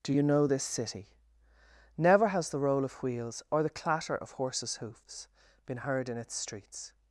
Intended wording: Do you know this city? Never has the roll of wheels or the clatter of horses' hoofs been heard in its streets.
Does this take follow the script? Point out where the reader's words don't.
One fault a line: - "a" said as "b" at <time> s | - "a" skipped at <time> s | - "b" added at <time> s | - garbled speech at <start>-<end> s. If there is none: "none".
none